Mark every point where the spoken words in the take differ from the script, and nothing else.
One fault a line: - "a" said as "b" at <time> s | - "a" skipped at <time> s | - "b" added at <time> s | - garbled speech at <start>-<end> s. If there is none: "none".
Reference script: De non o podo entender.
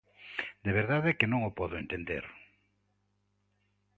- "verdade que" added at 0.8 s